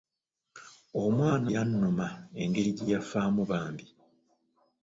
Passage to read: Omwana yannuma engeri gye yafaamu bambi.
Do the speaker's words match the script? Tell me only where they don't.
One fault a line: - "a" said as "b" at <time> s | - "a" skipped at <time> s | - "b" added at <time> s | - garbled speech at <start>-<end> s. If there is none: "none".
none